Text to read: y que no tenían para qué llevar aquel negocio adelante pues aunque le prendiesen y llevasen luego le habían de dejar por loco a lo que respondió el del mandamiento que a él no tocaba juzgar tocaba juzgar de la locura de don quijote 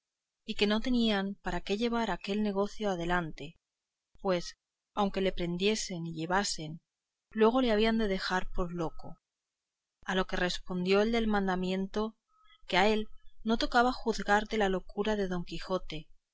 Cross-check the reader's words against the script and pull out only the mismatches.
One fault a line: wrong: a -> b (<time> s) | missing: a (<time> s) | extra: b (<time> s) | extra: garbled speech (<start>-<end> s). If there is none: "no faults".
missing: tocaba juzgar (14.5 s)